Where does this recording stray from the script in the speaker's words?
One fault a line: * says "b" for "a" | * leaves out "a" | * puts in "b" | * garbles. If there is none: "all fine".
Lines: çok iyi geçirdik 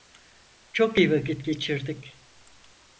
* puts in "vakit"